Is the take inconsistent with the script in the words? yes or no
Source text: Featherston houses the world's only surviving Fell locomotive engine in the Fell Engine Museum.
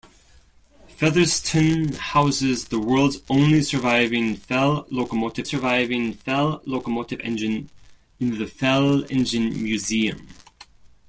yes